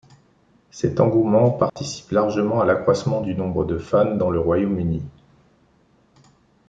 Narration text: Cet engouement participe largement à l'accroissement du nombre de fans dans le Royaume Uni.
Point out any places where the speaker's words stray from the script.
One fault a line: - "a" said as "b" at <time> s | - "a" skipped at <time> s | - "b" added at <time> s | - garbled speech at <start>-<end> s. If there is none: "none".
none